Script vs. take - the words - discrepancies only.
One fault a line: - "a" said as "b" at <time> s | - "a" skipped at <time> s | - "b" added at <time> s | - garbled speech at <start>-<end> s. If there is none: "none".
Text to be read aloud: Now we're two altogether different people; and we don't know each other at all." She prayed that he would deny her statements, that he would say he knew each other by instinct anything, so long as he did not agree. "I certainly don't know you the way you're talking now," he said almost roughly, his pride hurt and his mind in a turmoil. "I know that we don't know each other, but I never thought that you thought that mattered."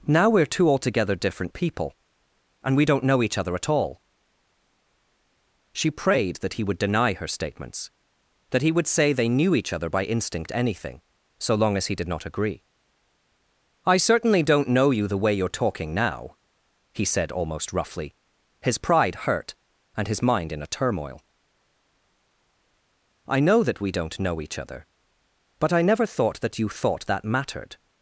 - "he" said as "they" at 9.1 s